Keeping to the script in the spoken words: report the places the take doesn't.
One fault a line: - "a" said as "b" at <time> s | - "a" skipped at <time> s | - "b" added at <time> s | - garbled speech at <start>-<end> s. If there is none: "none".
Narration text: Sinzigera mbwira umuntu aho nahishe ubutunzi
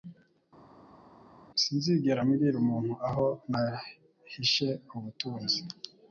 none